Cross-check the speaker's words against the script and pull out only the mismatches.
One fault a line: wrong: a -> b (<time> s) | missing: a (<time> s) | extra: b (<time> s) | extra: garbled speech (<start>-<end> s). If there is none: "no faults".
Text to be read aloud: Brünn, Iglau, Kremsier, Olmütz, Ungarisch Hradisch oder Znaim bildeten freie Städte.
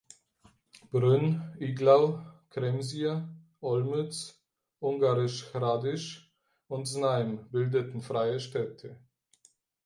wrong: oder -> und (6.7 s)